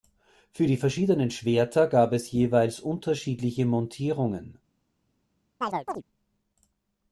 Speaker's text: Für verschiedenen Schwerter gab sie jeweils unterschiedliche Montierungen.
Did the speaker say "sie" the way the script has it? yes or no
no